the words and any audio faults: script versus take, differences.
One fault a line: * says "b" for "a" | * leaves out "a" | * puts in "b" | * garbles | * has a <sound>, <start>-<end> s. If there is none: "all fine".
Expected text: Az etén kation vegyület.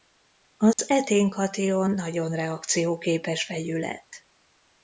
* has a dropout, 0.7-0.8 s
* puts in "nagyon reakcióképes"